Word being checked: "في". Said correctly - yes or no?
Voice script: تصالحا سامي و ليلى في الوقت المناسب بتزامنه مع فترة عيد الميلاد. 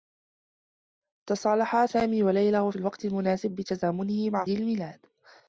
no